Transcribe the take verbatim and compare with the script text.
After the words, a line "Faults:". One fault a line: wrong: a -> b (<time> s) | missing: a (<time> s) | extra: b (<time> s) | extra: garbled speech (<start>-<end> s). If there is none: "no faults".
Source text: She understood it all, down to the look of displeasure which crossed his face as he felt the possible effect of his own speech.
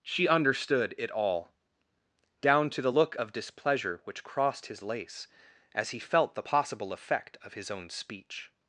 She understood it all, down to the look of displeasure which crossed his lace as he felt the possible effect of his own speech.
Faults:
wrong: face -> lace (4.8 s)